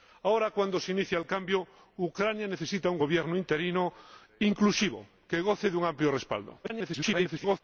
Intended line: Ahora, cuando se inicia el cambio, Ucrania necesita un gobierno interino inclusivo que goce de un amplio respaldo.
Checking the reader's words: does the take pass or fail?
fail